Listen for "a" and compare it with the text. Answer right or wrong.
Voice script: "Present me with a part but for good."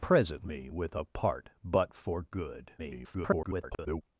right